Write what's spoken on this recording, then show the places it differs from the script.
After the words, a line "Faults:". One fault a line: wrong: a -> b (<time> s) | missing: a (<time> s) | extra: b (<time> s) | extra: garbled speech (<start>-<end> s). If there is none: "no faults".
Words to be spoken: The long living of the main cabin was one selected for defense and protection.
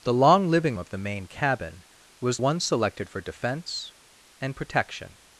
The long living of the main cabin was one selected for defense and protection.
Faults:
no faults